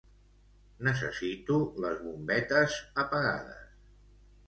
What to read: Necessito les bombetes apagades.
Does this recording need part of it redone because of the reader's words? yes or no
no